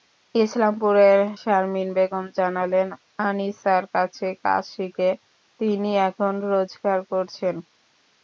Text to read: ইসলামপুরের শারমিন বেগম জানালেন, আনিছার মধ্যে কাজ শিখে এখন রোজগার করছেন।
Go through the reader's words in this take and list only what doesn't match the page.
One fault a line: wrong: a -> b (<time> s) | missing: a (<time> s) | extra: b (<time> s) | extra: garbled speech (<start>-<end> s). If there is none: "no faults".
wrong: মধ্যে -> কাছে (3.9 s)
extra: তিনি (5.6 s)